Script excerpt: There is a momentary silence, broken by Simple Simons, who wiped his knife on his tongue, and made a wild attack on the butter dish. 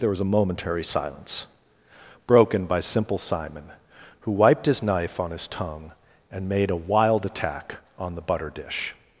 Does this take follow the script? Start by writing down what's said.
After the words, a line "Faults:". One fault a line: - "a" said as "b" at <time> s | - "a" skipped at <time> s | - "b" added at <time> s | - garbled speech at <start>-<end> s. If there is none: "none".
There was a momentary silence, broken by Simple Simon, who wiped his knife on his tongue, and made a wild attack on the butter dish.
Faults:
- "is" said as "was" at 0.1 s
- "Simons" said as "Simon" at 3.2 s